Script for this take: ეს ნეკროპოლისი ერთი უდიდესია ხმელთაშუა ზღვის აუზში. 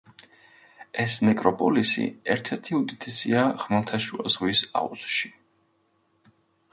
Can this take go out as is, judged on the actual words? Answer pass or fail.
fail